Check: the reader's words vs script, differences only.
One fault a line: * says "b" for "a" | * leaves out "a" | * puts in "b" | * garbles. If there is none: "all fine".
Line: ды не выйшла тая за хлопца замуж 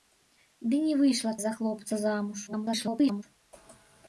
* leaves out "тая"
* garbles